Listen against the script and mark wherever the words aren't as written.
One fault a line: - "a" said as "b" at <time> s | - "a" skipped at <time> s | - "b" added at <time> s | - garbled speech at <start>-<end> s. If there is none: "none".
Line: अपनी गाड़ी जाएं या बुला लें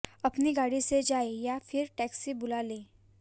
- "से" added at 0.8 s
- "फिर टैक्सी" added at 1.6 s